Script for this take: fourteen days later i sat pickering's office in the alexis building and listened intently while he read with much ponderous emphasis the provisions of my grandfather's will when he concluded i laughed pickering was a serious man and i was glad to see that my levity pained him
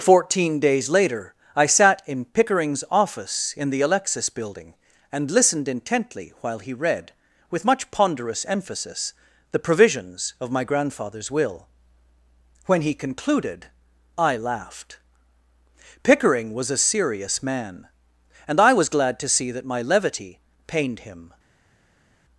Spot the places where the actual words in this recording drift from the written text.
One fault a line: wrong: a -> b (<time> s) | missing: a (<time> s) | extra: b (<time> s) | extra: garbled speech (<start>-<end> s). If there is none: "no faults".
extra: in (2.1 s)